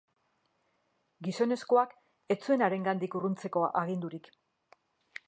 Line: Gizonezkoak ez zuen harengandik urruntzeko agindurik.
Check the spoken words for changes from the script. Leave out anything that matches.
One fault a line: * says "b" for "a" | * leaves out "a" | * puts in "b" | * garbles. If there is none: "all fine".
all fine